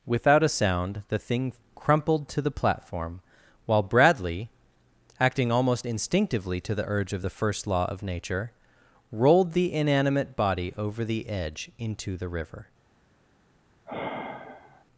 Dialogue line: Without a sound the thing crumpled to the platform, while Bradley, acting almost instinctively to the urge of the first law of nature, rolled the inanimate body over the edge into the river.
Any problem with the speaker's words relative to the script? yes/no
no